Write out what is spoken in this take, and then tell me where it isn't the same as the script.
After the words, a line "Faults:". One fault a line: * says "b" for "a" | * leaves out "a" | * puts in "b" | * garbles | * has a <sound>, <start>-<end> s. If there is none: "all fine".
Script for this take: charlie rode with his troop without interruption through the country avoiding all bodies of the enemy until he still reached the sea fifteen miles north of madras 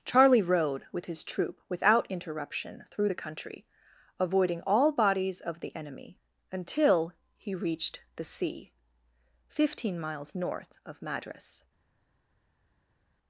charlie rode with his troop without interruption through the country avoiding all bodies of the enemy until he reached the sea fifteen miles north of madras
Faults:
* leaves out "still"